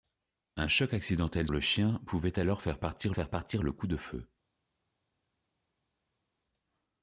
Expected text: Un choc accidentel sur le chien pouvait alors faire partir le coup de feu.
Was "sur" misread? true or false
true